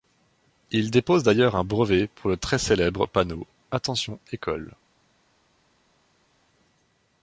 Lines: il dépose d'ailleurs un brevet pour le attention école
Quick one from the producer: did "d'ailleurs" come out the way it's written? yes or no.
yes